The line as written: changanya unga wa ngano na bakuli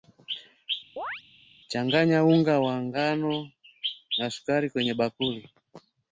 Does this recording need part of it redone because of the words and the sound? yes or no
yes